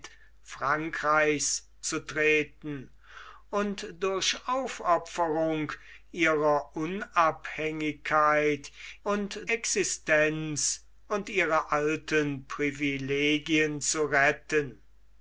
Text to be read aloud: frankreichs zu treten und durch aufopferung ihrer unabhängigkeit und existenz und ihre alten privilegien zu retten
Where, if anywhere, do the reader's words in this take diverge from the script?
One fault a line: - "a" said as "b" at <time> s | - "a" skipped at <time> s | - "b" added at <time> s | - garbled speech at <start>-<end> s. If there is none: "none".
none